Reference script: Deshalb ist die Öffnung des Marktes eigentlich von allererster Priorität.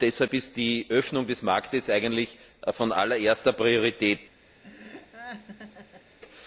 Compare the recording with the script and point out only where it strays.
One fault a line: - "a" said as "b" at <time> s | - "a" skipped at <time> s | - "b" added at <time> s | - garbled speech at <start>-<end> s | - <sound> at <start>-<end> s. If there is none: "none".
- laugh at 4.6-6.2 s